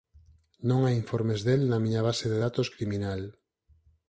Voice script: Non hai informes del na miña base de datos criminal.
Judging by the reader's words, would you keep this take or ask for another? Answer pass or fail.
pass